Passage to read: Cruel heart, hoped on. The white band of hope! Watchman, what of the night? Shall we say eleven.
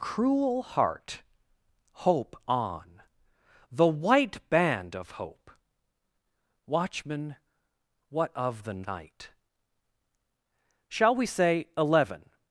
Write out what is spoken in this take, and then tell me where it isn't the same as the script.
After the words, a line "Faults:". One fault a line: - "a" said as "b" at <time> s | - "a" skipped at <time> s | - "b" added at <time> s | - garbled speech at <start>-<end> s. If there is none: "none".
Cruel heart, hope on. The white band of hope! Watchman, what of the night? Shall we say eleven.
Faults:
- "hoped" said as "hope" at 2.1 s